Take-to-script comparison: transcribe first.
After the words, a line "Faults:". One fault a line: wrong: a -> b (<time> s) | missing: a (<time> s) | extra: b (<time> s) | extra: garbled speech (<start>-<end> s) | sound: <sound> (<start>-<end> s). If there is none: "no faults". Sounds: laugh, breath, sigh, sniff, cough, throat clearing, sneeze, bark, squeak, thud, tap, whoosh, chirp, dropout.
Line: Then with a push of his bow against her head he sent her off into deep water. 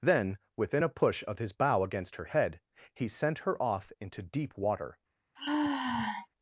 Then within a push of his bow against her head he sent her off into deep water.
Faults:
wrong: with -> within (0.6 s)
sound: sigh (5.4-6.3 s)